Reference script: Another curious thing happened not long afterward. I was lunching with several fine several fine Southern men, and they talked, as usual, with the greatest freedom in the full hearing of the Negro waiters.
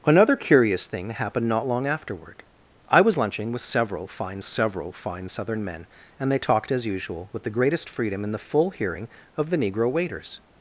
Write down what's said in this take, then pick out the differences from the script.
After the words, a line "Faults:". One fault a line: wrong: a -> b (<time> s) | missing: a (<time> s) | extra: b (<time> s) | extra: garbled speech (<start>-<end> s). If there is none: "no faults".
Another curious thing happened not long afterward. I was lunching with several fine several fine Southern men, and they talked, as usual, with the greatest freedom in the full hearing of the Negro waiters.
Faults:
no faults